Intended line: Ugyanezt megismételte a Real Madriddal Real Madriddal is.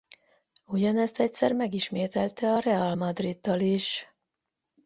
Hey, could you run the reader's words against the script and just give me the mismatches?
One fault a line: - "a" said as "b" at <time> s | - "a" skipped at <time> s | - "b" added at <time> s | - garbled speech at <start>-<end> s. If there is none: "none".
- "egyszer" added at 1.2 s
- "Real Madriddal" skipped at 3.6 s